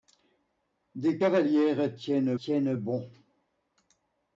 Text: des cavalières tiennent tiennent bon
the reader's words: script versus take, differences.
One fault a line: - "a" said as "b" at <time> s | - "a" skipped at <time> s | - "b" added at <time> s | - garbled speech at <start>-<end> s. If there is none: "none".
none